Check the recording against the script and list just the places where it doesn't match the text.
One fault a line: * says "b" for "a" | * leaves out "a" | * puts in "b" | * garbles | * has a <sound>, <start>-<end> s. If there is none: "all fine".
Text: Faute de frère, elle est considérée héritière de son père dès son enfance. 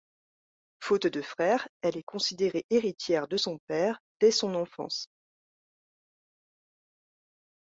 all fine